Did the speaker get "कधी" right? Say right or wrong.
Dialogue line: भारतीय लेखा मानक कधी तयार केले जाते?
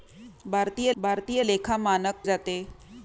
wrong